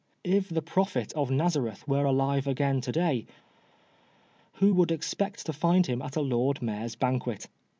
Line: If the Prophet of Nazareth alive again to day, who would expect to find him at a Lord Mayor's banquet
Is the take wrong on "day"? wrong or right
right